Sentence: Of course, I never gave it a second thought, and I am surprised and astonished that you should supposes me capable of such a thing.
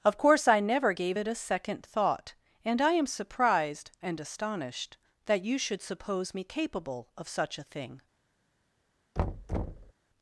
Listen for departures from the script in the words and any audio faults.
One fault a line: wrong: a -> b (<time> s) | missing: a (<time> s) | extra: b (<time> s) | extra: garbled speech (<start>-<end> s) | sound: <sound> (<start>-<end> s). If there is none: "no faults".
wrong: supposes -> suppose (5.8 s)
sound: thud (9.2-9.9 s)